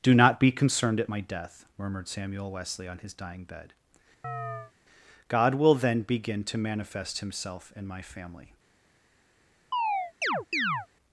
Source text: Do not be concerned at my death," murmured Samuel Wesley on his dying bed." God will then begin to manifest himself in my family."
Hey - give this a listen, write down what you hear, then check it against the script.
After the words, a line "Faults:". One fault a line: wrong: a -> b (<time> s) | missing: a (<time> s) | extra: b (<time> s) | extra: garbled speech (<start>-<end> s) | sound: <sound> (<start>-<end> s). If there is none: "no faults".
Do not be concerned at my death," murmured Samuel Wesley on his dying bed." God will then begin to manifest himself in my family."
Faults:
sound: chirp (4.2-4.7 s)
sound: chirp (9.7-10.9 s)